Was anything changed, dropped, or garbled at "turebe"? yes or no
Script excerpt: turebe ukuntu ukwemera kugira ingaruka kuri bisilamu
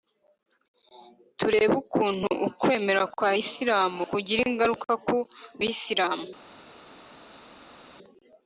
no